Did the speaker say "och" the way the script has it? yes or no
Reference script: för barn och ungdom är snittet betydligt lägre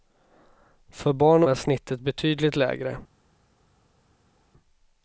no